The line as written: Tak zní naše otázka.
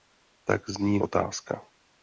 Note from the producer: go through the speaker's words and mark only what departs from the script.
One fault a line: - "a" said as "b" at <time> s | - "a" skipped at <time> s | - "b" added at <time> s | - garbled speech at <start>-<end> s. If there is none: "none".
- "naše" skipped at 1.0 s